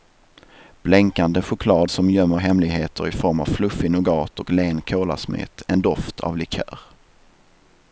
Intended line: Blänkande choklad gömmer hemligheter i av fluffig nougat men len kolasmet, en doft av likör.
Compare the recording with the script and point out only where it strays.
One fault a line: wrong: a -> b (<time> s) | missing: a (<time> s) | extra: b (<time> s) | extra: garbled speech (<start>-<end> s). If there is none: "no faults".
extra: som (1.9 s)
extra: form (3.1 s)
wrong: men -> och (4.4 s)